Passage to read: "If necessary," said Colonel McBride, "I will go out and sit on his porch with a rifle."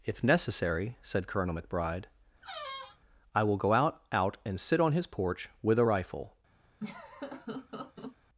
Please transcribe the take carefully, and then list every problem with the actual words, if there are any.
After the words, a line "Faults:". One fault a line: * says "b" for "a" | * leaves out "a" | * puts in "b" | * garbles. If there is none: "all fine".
"If necessary," said Colonel McBride, "I will go out out and sit on his porch with a rifle."
Faults:
* puts in "out"